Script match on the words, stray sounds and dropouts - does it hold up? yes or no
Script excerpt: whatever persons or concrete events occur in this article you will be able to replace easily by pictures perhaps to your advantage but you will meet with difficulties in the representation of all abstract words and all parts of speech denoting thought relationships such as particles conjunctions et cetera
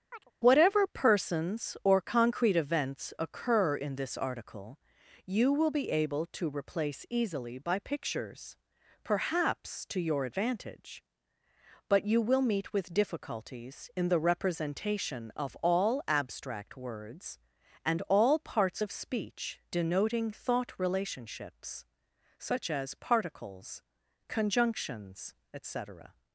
no